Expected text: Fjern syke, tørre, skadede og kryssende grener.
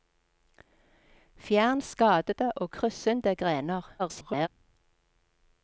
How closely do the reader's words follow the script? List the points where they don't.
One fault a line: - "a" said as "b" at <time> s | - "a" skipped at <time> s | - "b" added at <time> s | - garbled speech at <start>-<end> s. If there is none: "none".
- "syke tørre" skipped at 1.8 s
- garbled speech at 4.0-4.5 s